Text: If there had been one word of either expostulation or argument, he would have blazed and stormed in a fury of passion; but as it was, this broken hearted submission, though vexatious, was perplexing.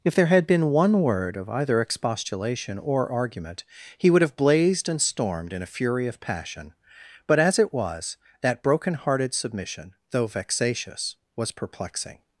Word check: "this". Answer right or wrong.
wrong